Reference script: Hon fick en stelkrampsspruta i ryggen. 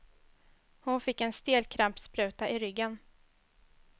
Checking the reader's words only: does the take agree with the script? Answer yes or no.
yes